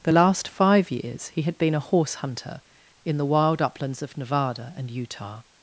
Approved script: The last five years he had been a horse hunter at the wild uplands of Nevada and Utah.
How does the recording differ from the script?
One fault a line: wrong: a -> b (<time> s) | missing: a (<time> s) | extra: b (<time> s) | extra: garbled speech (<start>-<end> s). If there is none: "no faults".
wrong: at -> in (3.0 s)